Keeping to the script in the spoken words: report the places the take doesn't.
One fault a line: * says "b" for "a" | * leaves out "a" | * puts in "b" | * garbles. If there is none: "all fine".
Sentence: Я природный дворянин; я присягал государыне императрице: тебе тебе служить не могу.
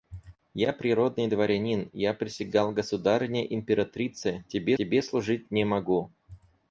all fine